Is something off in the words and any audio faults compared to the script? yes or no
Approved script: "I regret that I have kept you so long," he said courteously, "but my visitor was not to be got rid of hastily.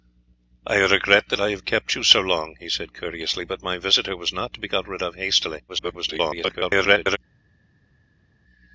yes